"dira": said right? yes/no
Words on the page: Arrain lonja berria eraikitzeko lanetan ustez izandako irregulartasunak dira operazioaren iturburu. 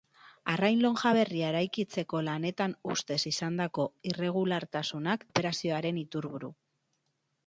no